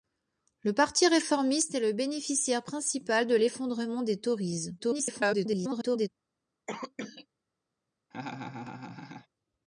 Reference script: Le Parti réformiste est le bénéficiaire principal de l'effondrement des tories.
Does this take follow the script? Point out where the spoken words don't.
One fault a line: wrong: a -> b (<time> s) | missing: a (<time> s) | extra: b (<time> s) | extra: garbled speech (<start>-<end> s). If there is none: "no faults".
extra: garbled speech (4.8-6.1 s)